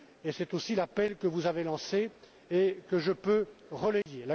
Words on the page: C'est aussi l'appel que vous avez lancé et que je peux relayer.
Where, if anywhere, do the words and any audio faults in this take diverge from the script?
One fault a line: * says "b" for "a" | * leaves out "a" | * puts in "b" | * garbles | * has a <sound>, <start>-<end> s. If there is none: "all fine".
* has a dropout, 4.0-4.1 s